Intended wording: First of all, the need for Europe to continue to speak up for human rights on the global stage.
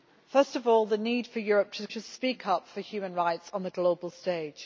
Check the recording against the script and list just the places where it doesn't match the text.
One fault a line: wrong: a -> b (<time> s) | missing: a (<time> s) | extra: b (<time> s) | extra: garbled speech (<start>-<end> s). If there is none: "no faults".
missing: continue (1.9 s)